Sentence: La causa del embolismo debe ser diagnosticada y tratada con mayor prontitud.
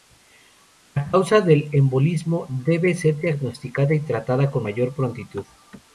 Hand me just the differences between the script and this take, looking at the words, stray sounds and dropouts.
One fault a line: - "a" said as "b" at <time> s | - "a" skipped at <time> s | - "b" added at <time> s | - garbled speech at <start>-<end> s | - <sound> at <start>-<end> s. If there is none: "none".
none